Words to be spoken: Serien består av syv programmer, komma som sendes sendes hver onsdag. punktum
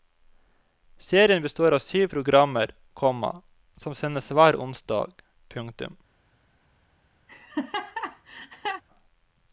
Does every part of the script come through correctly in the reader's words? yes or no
no